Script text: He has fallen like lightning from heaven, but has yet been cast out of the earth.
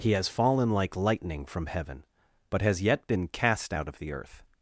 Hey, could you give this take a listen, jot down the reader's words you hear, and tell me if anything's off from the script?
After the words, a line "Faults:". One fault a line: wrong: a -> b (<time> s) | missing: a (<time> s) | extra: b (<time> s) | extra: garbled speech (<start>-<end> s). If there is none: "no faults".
He has fallen like lightning from heaven, but has yet been cast out of the earth.
Faults:
no faults